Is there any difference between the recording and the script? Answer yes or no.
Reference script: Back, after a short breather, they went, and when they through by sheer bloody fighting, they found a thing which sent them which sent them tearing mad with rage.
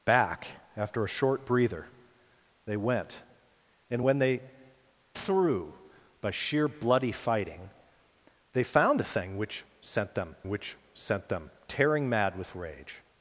no